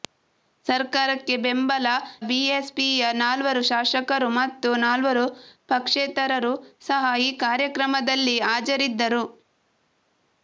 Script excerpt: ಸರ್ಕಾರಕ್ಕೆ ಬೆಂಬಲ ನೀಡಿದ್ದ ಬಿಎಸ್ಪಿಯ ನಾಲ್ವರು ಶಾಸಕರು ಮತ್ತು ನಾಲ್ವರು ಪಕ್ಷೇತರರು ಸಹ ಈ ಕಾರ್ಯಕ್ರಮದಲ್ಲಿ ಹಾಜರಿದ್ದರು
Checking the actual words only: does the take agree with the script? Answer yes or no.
no